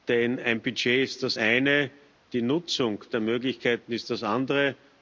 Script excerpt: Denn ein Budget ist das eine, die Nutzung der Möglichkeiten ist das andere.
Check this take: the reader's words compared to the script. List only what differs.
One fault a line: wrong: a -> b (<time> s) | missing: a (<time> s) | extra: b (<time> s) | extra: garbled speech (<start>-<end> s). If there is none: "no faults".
no faults